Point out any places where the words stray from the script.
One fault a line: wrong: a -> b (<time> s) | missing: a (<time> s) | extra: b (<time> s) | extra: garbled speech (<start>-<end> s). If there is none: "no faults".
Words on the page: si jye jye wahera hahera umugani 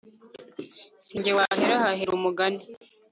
missing: jye (1.3 s)